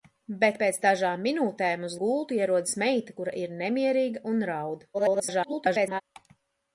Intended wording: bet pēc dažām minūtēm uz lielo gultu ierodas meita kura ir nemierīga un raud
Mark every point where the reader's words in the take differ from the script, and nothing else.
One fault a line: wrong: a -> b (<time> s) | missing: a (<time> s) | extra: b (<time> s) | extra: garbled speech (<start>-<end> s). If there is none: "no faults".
missing: lielo (2.0 s)
extra: garbled speech (4.9-6.0 s)